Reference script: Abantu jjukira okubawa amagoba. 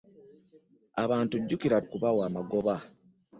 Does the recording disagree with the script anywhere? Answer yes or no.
no